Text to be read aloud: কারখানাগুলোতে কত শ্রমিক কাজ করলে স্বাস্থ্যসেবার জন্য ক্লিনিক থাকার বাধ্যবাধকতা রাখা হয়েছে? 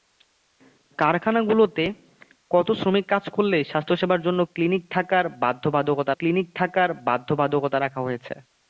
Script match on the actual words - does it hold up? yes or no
no